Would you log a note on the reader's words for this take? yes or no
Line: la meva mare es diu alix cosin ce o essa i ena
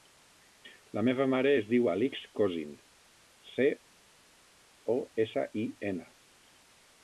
no